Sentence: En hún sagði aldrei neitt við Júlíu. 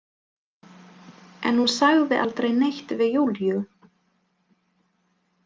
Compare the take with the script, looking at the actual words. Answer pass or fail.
pass